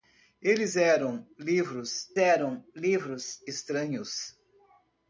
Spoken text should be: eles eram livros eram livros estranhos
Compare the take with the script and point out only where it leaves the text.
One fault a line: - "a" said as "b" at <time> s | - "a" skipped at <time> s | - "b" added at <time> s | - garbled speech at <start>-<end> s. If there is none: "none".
none